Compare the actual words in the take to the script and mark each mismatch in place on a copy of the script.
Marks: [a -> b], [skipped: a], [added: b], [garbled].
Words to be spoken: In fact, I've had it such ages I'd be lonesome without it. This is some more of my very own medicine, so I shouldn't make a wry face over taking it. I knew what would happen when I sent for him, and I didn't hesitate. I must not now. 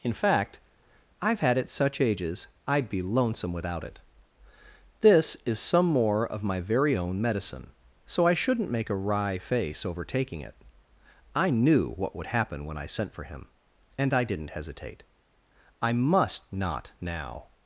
In fact, I've had it such ages I'd be lonesome without it. This is some more of my very own medicine, so I shouldn't make a wry face over taking it. I knew what would happen when I sent for him, and I didn't hesitate. I must not now.